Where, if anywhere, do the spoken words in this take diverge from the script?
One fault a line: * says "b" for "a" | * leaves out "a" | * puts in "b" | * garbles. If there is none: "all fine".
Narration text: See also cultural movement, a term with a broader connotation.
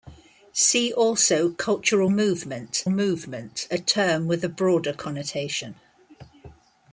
* puts in "movement"